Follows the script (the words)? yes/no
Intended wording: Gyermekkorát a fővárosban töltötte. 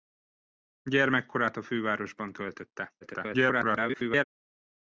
no